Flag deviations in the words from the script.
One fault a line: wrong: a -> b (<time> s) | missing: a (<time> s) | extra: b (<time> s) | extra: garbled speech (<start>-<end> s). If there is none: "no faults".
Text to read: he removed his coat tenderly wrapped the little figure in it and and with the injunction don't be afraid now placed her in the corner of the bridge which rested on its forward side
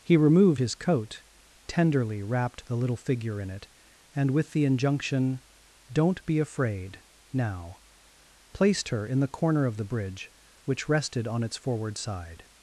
missing: and (4.3 s)